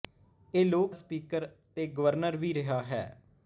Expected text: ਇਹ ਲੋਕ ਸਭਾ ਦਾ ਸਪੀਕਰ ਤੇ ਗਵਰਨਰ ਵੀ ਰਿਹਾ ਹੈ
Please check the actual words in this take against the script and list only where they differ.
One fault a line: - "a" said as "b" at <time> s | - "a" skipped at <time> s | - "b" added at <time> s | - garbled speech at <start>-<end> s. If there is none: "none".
- "ਸਭਾ ਦਾ" skipped at 0.9 s